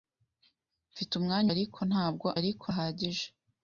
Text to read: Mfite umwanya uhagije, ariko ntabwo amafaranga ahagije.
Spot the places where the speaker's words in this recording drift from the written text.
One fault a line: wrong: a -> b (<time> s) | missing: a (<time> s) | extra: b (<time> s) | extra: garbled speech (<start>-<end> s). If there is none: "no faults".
missing: uhagije (1.5 s)
wrong: amafaranga -> ariko (2.4 s)